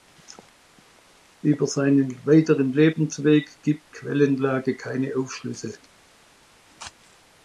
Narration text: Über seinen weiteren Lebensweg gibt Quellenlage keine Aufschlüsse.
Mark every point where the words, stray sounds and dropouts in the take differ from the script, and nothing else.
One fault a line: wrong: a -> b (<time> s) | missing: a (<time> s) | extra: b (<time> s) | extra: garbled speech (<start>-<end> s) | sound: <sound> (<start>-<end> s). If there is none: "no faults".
no faults